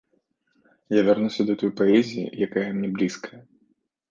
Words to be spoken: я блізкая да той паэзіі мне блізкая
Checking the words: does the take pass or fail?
fail